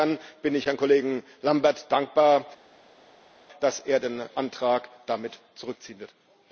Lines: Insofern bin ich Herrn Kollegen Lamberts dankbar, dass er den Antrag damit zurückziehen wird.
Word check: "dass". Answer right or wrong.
right